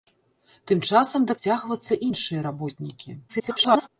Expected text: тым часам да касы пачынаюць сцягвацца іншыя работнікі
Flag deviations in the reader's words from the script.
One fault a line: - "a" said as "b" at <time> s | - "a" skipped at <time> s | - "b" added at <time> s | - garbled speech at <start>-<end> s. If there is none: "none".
- "касы пачынаюць" skipped at 1.4 s
- garbled speech at 3.3-3.9 s